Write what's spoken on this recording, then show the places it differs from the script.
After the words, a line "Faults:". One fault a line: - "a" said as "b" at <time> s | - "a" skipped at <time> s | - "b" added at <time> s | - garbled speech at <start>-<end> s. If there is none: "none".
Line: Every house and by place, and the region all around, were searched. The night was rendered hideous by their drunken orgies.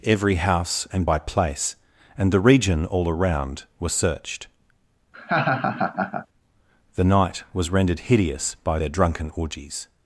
Every house and by place, and the region all around, were searched. The night was rendered hideous by their drunken orgies.
Faults:
none